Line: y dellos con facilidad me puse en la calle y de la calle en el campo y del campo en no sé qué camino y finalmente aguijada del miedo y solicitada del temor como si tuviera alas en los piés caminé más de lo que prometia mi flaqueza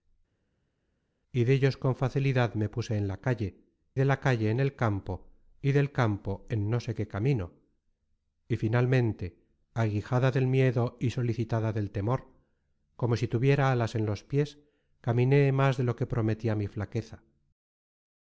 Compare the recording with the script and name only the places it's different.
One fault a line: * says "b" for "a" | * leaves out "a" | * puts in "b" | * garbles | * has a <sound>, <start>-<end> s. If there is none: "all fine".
* leaves out "y"